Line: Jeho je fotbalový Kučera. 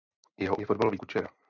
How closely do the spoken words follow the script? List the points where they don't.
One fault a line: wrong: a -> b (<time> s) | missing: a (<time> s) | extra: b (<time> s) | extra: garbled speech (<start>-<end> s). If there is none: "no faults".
no faults